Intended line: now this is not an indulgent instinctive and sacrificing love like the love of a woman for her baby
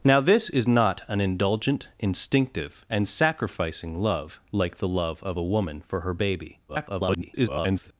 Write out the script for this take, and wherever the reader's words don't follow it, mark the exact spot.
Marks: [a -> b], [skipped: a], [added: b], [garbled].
now this is not an indulgent instinctive and sacrificing love like the love of a woman for her baby [garbled]